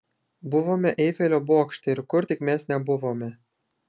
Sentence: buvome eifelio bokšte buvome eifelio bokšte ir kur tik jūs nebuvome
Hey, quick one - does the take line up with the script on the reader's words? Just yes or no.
no